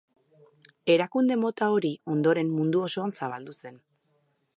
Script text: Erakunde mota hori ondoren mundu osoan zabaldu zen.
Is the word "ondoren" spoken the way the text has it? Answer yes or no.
yes